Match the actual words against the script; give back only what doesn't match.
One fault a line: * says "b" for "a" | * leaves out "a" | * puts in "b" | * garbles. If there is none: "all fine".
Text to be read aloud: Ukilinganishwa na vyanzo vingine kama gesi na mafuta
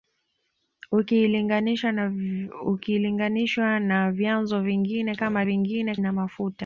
* says "vingine" for "gesi"